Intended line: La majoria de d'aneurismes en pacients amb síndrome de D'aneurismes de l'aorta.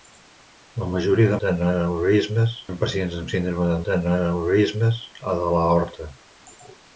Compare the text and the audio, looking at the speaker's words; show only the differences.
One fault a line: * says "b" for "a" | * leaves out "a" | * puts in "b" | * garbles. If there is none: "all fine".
all fine